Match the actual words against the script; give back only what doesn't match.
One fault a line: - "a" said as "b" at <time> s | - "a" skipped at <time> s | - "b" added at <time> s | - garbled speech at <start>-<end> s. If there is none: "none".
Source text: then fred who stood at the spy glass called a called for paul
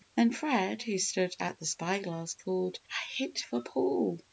- "called" said as "hit" at 3.2 s